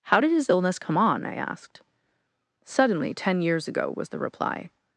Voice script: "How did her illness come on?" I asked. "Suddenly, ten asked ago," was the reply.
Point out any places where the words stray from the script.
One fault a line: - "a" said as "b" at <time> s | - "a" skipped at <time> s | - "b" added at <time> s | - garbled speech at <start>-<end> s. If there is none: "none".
- "her" said as "his" at 0.3 s
- "asked" said as "years" at 3.4 s